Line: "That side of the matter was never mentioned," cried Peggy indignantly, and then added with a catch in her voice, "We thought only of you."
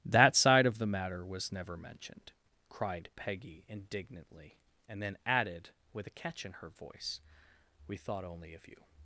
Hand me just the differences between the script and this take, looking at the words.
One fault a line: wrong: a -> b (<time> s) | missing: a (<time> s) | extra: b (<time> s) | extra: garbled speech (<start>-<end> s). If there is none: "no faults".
no faults